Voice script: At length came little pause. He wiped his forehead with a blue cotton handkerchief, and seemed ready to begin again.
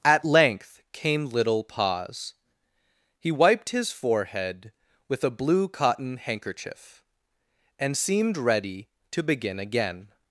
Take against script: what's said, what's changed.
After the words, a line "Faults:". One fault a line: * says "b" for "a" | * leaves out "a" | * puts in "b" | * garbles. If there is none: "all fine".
At length came little pause. He wiped his forehead with a blue cotton handkerchief, and seemed ready to begin again.
Faults:
all fine